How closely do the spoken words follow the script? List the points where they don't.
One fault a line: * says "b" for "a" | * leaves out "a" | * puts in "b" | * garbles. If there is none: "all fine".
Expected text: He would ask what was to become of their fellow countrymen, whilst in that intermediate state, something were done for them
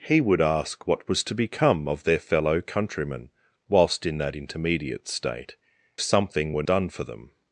all fine